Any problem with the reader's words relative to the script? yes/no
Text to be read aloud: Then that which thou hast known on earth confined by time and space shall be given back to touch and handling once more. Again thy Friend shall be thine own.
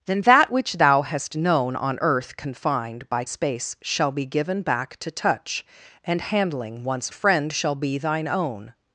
yes